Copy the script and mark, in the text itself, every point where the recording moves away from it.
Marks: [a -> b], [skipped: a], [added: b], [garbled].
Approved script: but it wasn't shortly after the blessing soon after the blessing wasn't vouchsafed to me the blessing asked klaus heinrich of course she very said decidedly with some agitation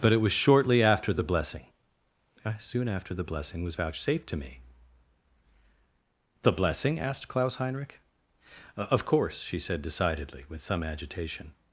but it [wasn't -> was] shortly after the blessing soon after the blessing [wasn't -> was] vouchsafed to me the blessing asked klaus heinrich of course she [skipped: very] said decidedly with some agitation